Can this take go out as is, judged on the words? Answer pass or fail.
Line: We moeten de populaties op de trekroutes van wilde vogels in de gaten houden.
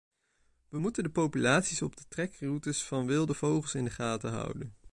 pass